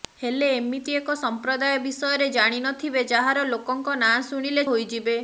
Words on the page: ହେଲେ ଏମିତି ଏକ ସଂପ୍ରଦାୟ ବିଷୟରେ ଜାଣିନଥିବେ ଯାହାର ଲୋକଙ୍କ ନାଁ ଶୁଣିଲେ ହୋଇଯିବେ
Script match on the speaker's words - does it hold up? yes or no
yes